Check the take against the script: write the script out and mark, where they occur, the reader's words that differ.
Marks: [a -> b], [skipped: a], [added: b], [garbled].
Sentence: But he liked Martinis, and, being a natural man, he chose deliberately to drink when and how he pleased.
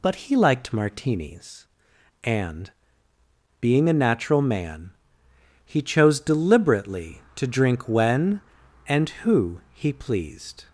But he liked Martinis, and, being a natural man, he chose deliberately to drink when and [how -> who] he pleased.